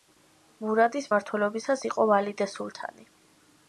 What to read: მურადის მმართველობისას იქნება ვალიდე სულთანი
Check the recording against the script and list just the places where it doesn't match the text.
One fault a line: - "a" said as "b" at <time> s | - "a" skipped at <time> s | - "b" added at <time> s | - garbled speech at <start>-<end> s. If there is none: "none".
- "იქნება" said as "იყო" at 1.9 s